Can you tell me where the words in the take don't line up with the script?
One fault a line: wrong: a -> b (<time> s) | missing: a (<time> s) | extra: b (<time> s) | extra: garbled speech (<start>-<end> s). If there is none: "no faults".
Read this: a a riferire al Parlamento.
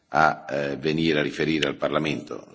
extra: venire (0.8 s)